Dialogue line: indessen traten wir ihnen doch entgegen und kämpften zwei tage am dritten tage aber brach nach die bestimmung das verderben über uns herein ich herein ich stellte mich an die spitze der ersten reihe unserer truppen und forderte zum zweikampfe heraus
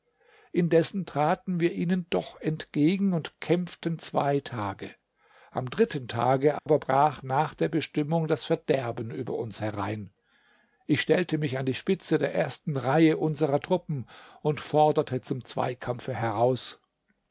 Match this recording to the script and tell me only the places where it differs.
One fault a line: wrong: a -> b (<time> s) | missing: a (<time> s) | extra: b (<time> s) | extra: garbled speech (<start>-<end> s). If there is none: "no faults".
wrong: die -> der (7.5 s)
missing: herein ich (11.0 s)